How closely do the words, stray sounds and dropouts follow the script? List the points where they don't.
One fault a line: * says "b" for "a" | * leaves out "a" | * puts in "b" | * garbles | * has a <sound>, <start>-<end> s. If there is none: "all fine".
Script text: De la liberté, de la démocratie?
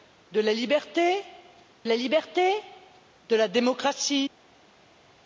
* puts in "la liberté"